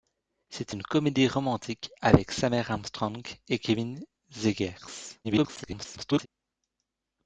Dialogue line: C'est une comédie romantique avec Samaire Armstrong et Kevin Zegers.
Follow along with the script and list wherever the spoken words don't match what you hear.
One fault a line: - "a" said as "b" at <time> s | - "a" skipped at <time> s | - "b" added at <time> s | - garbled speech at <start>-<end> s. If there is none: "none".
- garbled speech at 5.2-6.3 s